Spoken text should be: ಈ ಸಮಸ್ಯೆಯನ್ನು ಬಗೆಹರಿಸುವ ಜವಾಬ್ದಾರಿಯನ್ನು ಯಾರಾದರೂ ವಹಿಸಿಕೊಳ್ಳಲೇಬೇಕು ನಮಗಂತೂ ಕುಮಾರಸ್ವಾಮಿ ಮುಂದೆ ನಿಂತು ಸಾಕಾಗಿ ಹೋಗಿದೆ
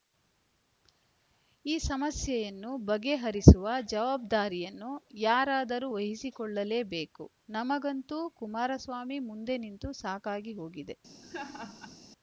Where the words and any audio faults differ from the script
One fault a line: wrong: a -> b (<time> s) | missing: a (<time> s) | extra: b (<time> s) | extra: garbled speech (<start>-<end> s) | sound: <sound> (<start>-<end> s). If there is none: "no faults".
sound: laugh (11.2-12.0 s)